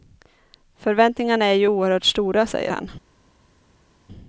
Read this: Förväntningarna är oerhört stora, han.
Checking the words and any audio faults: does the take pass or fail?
fail